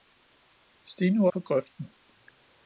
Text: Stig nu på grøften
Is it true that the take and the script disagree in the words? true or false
false